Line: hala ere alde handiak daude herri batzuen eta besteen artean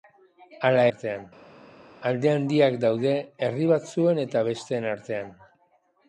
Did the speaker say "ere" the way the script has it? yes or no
no